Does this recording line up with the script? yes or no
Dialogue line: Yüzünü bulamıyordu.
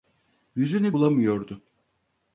yes